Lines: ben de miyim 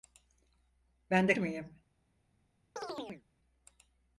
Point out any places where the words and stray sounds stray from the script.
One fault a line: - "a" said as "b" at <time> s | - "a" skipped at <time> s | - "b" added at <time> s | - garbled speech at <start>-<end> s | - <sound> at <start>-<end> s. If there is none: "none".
- chirp at 2.8-3.2 s